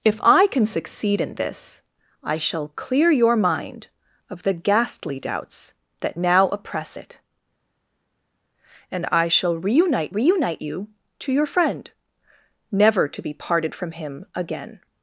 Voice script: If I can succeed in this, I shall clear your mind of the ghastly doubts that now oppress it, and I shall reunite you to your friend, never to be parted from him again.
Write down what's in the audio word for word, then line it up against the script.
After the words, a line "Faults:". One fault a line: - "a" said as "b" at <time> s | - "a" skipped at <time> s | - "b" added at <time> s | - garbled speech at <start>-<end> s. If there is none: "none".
If I can succeed in this, I shall clear your mind of the ghastly doubts that now oppress it, and I shall reunite reunite you to your friend, never to be parted from him again.
Faults:
- "reunite" added at 10.1 s